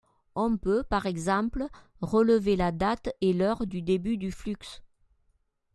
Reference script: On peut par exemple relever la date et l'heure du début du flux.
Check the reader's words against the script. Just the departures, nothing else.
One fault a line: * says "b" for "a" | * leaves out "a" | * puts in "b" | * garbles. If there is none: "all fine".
all fine